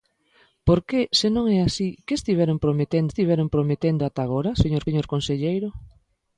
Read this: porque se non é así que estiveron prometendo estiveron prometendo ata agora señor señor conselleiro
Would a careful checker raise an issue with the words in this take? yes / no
no